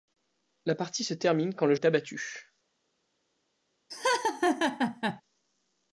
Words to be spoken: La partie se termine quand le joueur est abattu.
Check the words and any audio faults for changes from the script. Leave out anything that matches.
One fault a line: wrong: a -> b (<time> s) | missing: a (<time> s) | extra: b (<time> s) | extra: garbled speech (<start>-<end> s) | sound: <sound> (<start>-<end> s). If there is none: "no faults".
missing: joueur (1.8 s)
sound: laugh (3.9-5.2 s)